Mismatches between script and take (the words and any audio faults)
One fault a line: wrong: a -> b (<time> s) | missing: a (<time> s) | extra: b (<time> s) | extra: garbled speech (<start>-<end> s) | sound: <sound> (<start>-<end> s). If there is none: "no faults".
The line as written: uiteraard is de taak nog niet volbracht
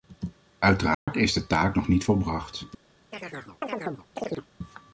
sound: dropout (0.9-1.1 s)
sound: chirp (3.1-4.5 s)